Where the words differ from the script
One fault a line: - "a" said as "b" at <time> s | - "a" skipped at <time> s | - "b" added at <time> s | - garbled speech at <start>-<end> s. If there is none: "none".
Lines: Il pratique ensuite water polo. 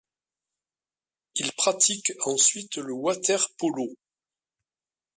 - "le" added at 2.8 s